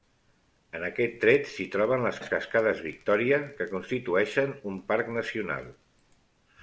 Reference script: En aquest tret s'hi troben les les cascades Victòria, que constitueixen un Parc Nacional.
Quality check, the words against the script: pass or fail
pass